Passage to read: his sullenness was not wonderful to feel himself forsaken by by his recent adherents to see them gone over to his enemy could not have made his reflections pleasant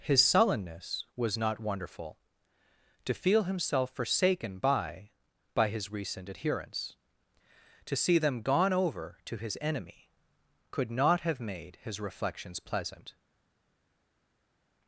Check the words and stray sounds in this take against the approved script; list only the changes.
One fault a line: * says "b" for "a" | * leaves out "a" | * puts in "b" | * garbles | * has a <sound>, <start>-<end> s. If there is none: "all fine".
all fine